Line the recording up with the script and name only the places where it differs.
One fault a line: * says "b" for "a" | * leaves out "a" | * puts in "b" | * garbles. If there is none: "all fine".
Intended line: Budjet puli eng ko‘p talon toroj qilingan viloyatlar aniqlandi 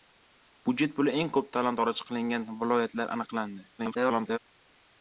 * garbles